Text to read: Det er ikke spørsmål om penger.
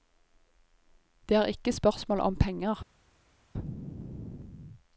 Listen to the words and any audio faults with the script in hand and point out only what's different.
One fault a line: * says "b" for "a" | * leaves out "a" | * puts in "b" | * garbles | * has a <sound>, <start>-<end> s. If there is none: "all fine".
all fine